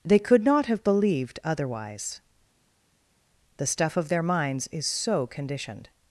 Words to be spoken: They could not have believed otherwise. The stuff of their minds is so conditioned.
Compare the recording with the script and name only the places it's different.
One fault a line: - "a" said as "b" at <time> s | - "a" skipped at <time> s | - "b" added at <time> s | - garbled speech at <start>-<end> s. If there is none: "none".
none